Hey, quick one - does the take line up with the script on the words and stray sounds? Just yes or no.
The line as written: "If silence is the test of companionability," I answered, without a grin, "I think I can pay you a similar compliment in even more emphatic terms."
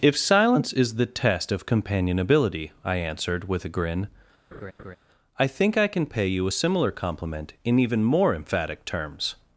no